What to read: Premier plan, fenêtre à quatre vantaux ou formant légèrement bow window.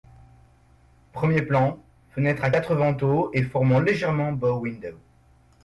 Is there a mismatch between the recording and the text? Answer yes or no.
yes